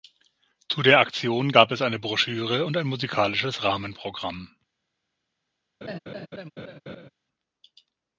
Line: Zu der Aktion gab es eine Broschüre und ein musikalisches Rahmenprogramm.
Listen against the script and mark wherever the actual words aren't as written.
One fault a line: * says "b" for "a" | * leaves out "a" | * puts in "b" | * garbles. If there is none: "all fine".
all fine